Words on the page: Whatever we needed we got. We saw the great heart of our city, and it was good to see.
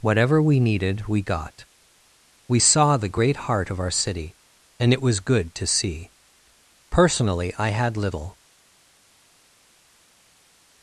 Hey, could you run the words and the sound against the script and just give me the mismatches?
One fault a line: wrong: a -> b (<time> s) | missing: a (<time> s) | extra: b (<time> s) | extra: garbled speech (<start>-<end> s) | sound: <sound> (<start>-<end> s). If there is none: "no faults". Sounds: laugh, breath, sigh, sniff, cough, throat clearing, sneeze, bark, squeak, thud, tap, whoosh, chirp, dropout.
extra: Personally I had little (7.2 s)